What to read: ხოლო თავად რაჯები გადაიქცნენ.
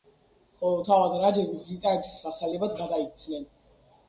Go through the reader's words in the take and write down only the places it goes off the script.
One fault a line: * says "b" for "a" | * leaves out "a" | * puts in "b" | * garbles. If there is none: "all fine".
* puts in "ბრიტანეთის ვასალებად"